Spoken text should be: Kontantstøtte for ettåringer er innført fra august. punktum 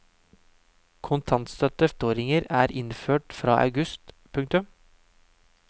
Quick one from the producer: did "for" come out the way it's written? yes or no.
no